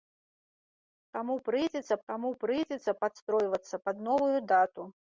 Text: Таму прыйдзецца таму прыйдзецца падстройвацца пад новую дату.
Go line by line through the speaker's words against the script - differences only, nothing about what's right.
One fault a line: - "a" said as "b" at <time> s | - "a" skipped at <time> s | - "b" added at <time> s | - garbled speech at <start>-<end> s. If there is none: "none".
none